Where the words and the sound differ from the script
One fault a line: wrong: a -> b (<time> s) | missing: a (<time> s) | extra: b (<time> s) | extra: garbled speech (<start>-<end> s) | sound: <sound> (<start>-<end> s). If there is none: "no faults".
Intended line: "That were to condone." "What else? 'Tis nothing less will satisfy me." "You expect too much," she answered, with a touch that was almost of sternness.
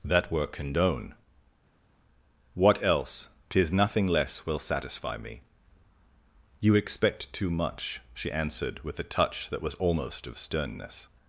missing: to (0.5 s)